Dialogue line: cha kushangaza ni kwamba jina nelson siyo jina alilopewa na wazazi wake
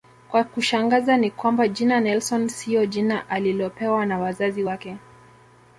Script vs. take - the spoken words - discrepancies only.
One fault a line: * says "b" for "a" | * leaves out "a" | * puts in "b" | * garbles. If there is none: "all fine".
all fine